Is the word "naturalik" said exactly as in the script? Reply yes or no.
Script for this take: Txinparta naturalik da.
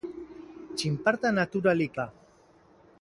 yes